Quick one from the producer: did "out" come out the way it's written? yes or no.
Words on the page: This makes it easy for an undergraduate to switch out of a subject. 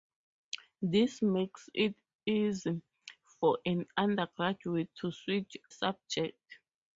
no